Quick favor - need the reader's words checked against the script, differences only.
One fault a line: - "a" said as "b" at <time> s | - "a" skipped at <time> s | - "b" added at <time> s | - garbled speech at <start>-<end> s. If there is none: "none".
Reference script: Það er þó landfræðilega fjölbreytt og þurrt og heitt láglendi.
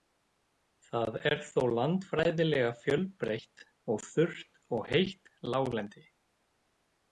none